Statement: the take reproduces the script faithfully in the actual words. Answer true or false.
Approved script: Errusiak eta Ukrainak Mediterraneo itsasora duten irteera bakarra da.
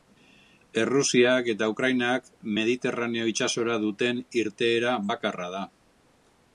true